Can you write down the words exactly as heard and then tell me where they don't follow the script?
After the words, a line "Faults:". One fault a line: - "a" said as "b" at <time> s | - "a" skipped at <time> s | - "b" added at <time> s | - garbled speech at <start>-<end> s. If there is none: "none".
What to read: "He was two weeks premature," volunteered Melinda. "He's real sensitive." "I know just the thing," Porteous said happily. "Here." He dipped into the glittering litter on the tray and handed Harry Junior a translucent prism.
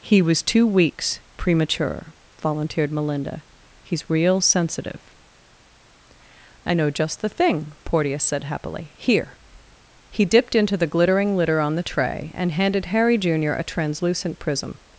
"He was two weeks premature," volunteered Melinda. "He's real sensitive." "I know just the thing," Porteous said happily. "Here." He dipped into the glittering litter on the tray and handed Harry Junior a translucent prism.
Faults:
none